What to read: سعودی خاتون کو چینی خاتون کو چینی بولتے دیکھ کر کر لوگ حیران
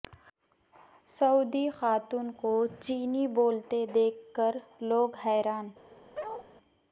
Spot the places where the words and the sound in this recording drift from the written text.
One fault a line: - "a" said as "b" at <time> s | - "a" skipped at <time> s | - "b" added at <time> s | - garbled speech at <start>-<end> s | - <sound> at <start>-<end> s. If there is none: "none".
- "خاتون کو چینی" skipped at 3.3 s
- "کر" skipped at 4.6 s
- bark at 6.1-6.5 s